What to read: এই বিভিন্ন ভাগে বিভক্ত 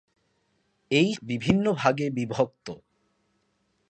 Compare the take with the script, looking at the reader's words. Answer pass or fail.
pass